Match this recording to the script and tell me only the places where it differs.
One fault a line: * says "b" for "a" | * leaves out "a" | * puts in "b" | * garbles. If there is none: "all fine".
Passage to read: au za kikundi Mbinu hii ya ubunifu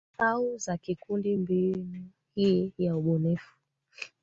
all fine